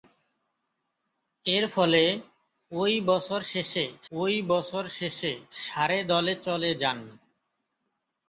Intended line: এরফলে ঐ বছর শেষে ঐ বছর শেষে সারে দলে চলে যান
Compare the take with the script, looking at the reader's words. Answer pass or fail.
pass